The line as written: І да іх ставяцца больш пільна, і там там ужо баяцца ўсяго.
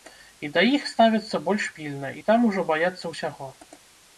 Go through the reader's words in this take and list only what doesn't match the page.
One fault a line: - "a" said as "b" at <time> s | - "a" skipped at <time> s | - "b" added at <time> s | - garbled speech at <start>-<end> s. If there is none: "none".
- "там" skipped at 2.5 s